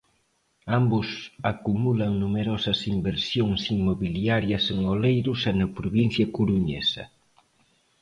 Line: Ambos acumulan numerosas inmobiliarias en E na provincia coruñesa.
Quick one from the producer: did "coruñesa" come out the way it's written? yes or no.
yes